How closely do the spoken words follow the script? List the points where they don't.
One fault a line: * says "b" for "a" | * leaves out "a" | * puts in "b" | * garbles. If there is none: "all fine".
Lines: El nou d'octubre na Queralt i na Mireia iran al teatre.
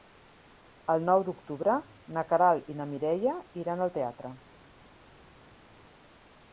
all fine